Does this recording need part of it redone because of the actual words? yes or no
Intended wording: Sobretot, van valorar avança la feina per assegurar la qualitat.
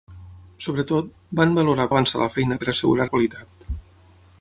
no